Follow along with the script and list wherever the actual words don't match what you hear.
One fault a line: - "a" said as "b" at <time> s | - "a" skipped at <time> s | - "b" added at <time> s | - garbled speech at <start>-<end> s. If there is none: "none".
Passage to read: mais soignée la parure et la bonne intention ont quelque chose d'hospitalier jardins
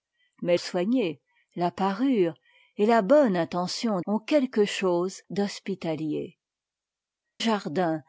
none